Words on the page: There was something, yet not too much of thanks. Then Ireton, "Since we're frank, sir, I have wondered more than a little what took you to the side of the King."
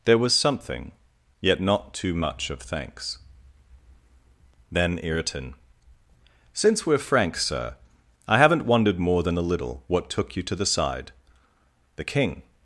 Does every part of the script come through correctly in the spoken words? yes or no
no